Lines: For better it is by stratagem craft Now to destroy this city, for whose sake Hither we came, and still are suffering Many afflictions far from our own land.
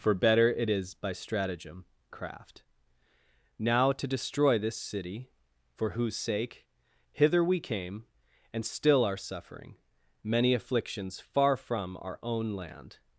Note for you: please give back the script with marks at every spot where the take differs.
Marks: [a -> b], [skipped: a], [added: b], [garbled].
For better it is by stratagem craft Now to destroy this city, for whose sake Hither we came, and still are suffering Many afflictions far from our own land.